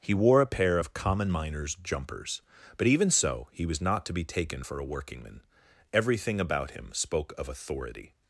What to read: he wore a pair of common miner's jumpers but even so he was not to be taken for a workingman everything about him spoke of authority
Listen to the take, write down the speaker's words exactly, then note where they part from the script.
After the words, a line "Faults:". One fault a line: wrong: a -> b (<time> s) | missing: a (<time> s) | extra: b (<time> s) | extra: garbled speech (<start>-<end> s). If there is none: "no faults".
he wore a pair of common miner's jumpers but even so he was not to be taken for a workingman everything about him spoke of authority
Faults:
no faults